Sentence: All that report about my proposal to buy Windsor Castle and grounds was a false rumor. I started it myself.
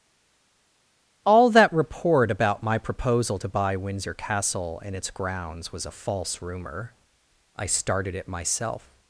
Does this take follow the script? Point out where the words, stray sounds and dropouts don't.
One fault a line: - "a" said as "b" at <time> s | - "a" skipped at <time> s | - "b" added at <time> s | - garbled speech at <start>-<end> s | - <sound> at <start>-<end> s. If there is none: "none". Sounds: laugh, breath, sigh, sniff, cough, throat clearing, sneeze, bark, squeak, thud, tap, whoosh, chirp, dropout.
- "its" added at 4.9 s